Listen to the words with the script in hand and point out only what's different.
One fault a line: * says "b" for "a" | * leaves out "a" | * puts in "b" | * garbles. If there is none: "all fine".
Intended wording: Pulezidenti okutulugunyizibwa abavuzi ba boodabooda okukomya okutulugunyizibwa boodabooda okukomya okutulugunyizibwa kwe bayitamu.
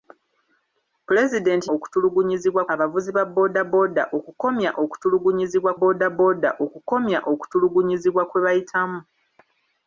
all fine